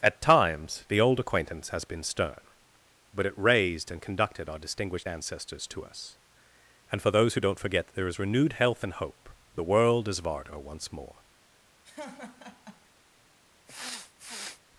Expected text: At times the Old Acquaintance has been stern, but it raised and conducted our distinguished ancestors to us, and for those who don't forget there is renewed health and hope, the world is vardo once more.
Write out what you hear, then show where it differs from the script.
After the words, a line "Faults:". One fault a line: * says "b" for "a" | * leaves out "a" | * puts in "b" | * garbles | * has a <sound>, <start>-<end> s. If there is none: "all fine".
At times the Old Acquaintance has been stern, but it raised and conducted our distinguished ancestors to us, and for those who don't forget there is renewed health and hope, the world is vardo once more.
Faults:
* has a laugh, 11.8-12.9 s
* has a sniff, 13.7-14.6 s